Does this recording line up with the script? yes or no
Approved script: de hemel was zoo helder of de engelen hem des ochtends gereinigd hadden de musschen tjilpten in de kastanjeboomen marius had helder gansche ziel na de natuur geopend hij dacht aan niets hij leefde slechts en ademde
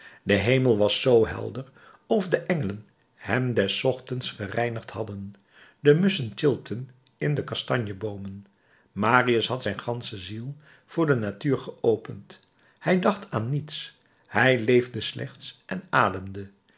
no